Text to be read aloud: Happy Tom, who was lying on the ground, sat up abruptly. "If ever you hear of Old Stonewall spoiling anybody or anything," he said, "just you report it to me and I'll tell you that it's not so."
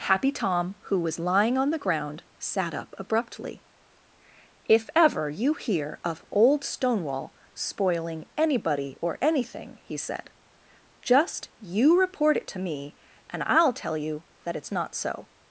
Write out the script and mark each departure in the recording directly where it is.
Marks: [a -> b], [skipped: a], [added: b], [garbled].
Happy Tom, who was lying on the ground, sat up abruptly. "If ever you hear of Old Stonewall spoiling anybody or anything," he said, "just you report it to me and I'll tell you that it's not so."